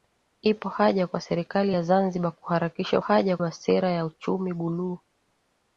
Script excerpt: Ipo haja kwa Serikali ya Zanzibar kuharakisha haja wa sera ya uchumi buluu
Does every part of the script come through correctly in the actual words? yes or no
yes